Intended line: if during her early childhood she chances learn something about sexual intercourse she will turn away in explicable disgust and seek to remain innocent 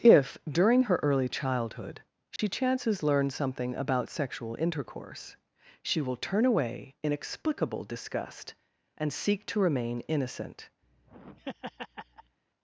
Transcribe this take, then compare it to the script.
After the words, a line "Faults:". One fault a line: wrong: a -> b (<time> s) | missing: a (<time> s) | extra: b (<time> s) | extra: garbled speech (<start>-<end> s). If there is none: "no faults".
if during her early childhood she chances learn something about sexual intercourse she will turn away in explicable disgust and seek to remain innocent
Faults:
no faults